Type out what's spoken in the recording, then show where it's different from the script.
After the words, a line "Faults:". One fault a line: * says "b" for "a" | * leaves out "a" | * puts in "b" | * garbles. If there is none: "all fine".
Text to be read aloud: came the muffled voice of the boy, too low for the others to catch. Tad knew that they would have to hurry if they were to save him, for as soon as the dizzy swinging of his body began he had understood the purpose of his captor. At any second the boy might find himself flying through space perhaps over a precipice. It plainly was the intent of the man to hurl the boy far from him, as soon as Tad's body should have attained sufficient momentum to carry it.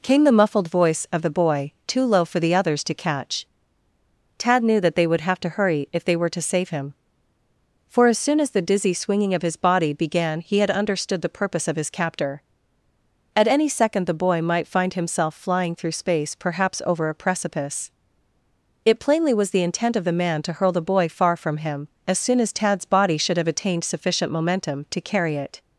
came the muffled voice of the boy, too low for the others to catch. Tad knew that they would have to hurry if they were to save him, for as soon as the dizzy swinging of his body began he had understood the purpose of his captor. At any second the boy might find himself flying through space perhaps over a precipice. It plainly was the intent of the man to hurl the boy far from him, as soon as Tad's body should have attained sufficient momentum to carry it.
Faults:
all fine